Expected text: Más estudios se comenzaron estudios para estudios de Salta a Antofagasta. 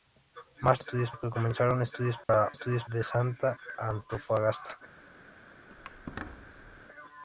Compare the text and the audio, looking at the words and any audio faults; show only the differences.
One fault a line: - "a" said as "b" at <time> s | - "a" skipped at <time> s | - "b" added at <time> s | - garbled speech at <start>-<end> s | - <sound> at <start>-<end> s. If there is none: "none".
- dropout at 2.2-2.3 s
- squeak at 5.7-6.8 s